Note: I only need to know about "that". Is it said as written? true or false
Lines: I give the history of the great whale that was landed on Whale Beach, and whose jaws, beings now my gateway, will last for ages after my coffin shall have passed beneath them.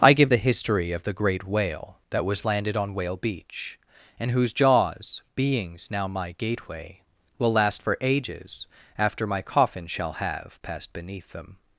true